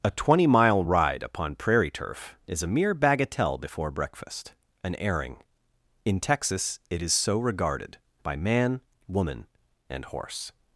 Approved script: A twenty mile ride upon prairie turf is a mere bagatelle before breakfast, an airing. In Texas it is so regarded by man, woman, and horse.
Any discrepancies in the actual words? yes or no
no